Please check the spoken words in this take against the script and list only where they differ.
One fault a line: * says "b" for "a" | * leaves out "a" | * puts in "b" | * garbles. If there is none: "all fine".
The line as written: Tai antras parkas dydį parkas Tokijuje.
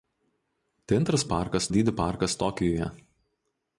all fine